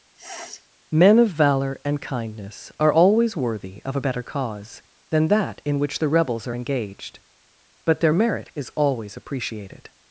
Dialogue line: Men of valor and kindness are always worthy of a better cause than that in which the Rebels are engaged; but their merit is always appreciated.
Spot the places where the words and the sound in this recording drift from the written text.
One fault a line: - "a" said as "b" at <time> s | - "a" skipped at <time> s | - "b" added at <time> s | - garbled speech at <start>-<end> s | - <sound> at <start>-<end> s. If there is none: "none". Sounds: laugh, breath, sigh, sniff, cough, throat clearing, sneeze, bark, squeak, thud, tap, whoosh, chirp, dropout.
- sniff at 0.1-0.7 s